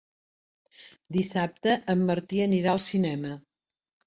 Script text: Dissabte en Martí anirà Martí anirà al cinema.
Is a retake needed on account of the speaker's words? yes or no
yes